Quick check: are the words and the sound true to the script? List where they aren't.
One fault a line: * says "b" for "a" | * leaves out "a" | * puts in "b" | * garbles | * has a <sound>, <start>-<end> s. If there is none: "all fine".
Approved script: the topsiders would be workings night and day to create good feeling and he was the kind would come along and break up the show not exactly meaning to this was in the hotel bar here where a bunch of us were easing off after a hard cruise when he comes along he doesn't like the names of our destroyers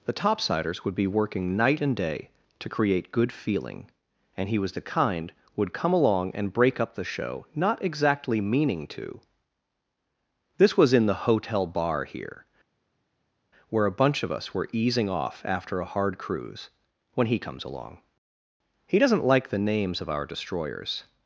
* says "working" for "workings"